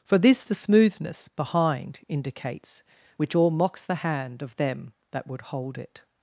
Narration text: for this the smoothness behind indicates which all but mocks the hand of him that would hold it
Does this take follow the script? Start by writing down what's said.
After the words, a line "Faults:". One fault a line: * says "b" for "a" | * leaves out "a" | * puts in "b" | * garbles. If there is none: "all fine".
for this the smoothness behind indicates which all mocks the hand of them that would hold it
Faults:
* leaves out "but"
* says "them" for "him"